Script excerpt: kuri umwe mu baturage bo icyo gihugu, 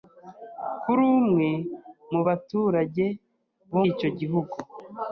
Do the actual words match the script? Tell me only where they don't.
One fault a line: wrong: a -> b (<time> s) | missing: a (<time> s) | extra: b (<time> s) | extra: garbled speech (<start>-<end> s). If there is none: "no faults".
no faults